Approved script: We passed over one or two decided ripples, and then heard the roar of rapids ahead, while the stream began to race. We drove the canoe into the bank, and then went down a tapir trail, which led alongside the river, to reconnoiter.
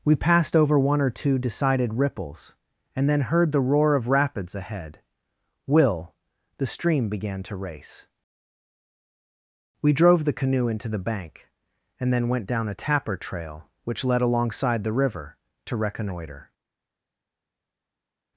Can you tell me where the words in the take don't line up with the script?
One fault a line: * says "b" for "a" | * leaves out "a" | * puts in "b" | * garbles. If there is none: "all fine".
* says "will" for "while"